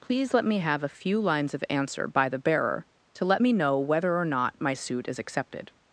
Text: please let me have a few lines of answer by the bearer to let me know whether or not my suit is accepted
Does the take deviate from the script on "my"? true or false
false